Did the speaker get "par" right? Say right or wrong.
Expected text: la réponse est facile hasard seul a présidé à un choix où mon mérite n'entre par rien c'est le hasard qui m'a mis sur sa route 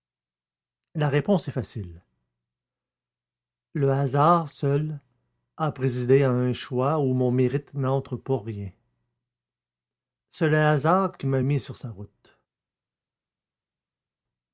wrong